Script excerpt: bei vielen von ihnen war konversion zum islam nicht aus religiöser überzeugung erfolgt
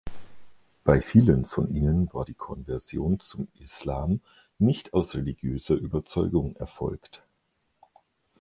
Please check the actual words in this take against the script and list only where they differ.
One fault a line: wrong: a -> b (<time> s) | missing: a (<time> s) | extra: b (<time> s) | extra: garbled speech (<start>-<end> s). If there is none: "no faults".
extra: die (2.2 s)